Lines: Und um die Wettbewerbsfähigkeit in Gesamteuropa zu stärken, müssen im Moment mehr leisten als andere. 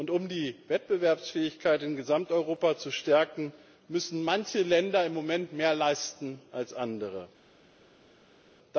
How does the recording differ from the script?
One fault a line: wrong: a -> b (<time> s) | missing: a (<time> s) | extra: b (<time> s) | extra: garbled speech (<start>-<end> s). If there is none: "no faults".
extra: manche Länder (4.2 s)